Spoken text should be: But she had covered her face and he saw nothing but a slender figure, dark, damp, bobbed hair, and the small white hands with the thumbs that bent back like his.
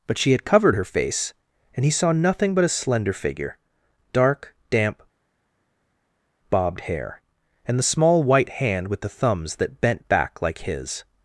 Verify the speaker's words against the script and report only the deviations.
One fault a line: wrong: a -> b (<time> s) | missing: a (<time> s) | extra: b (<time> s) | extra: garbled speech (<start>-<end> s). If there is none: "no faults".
wrong: hands -> hand (8.5 s)